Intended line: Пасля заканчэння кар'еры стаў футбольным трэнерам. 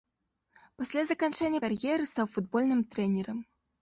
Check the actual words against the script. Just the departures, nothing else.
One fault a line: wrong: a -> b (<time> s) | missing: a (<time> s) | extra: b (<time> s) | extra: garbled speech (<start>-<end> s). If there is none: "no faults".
no faults